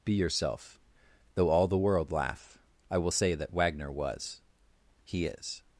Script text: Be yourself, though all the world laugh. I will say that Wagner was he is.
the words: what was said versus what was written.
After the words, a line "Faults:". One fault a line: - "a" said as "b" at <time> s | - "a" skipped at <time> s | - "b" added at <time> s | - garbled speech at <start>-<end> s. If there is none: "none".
Be yourself, though all the world laugh. I will say that Wagner was he is.
Faults:
none